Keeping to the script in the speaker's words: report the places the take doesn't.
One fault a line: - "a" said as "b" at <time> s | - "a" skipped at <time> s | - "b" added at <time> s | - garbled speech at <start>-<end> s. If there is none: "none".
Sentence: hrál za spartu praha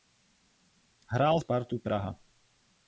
- "za" skipped at 1.4 s